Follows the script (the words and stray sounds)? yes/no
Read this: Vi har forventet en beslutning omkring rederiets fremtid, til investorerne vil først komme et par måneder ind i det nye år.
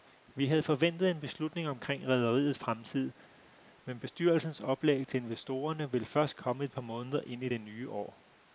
no